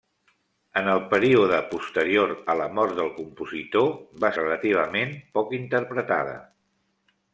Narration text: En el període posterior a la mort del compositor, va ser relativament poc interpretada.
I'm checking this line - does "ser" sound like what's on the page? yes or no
no